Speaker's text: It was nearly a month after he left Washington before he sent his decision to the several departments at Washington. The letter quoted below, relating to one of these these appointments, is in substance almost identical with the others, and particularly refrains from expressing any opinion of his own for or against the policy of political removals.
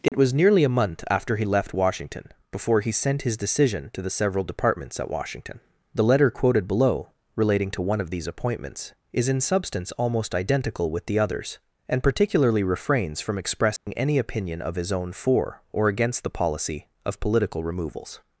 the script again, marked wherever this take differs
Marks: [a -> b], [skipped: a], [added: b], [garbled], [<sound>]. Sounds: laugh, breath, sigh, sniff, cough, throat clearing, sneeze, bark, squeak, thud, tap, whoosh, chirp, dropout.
It [dropout] was nearly a month after he left Washington before he sent his decision to the several departments at Washington. The letter quoted below, relating to one of these [skipped: these] appointments, is in substance almost identical with the others, and particularly refrains from expressing [dropout] any opinion of his own for or against the policy of political removals.